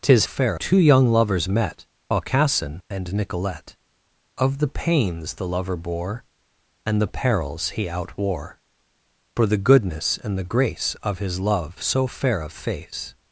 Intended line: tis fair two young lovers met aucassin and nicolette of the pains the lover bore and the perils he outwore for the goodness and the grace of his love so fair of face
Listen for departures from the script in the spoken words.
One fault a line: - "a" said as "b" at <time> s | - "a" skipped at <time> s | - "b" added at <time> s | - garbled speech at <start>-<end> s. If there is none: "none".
none